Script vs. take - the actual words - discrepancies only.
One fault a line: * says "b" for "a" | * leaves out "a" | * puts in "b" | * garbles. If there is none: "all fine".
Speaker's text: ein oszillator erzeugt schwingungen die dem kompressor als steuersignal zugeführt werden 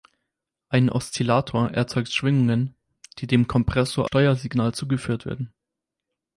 * leaves out "als"